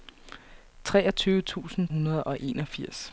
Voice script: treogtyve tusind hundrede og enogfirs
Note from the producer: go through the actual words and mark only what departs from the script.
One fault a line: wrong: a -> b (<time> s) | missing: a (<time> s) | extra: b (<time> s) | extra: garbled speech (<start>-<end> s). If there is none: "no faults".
no faults